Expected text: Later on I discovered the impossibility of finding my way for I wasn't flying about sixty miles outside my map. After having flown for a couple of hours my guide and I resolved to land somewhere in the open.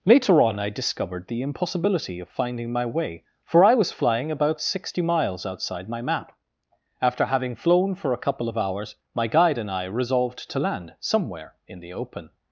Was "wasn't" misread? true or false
true